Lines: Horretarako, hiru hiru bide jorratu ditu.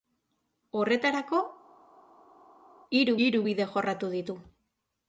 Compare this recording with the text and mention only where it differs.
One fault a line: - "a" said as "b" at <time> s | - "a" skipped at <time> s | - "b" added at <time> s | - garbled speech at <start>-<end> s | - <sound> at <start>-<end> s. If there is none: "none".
none